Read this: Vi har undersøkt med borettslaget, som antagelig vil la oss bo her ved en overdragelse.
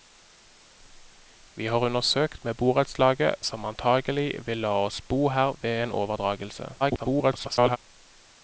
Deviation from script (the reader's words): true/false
true